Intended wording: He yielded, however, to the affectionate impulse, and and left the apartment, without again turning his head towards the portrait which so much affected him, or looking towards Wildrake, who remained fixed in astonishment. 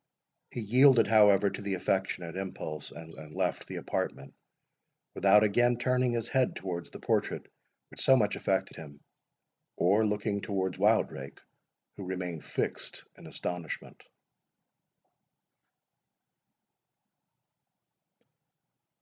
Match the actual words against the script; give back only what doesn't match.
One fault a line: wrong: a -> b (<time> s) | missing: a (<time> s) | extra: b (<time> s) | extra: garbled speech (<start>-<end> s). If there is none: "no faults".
no faults